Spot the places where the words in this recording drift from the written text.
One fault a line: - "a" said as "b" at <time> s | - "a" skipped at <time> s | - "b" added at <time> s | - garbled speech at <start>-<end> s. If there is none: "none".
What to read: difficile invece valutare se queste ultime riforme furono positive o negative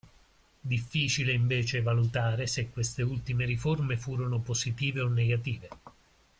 none